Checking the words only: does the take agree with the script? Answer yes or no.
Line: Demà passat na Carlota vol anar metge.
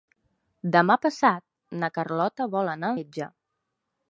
yes